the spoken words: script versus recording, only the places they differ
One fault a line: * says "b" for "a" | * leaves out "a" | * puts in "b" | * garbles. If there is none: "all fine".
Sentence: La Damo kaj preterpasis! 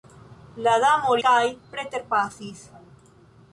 all fine